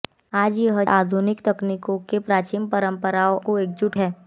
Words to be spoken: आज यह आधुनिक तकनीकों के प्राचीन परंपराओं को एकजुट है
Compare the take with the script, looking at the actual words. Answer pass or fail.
pass